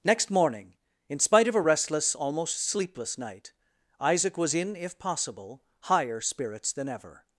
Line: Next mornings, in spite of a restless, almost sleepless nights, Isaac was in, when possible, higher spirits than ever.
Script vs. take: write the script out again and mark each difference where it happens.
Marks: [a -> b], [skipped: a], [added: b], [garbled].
Next [mornings, -> morning] in spite of a restless, almost sleepless [nights, -> night] Isaac was in, [when -> if] possible, higher spirits than ever.